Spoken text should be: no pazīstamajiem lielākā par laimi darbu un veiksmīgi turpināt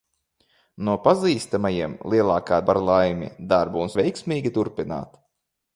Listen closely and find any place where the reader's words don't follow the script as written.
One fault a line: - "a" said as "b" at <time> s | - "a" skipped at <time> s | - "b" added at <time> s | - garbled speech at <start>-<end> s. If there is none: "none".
none